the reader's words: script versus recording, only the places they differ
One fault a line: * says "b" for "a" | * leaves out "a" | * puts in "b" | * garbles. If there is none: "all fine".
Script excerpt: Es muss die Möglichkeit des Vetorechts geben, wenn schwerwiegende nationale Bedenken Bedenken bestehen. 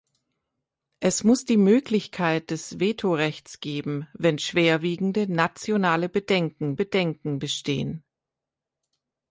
all fine